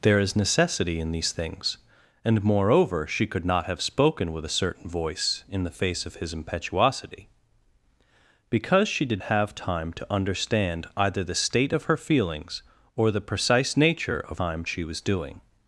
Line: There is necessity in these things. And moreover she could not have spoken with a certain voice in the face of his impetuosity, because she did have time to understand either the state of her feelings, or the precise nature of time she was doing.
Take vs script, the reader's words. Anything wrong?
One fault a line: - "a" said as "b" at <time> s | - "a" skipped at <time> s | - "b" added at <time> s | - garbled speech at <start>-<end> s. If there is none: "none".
none